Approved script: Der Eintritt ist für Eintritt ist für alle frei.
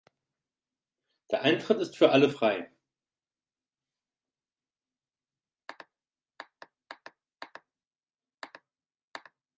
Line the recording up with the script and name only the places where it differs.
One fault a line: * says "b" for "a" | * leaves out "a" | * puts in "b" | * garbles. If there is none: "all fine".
* leaves out "Eintritt ist für"